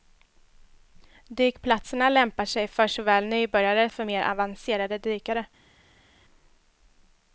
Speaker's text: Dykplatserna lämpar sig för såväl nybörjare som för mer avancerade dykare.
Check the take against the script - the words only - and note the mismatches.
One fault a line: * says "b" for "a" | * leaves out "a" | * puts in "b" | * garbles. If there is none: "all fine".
* leaves out "som"